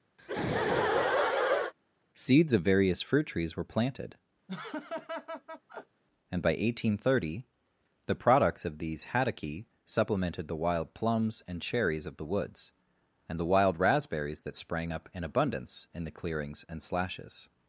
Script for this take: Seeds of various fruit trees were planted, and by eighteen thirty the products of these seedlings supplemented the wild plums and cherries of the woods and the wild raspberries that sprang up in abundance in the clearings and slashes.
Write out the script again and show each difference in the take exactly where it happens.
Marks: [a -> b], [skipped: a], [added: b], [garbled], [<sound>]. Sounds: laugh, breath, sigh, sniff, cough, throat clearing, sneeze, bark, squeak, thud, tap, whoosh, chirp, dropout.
[laugh] Seeds of various fruit trees were planted, [laugh] and by eighteen thirty the products of these [seedlings -> haddocky] supplemented the wild plums and cherries of the woods and the wild raspberries that sprang up in abundance in the clearings and slashes.